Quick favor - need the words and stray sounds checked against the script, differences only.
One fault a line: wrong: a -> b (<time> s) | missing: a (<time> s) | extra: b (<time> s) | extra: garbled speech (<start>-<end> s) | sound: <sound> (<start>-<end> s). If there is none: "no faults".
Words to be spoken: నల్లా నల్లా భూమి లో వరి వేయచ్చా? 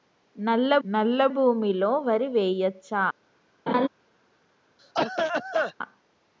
sound: laugh (3.7-3.9 s)
sound: cough (4.8-5.7 s)